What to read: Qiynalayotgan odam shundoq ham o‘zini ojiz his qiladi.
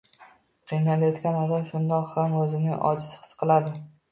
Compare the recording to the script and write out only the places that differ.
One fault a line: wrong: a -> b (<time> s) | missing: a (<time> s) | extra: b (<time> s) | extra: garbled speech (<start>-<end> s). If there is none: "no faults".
no faults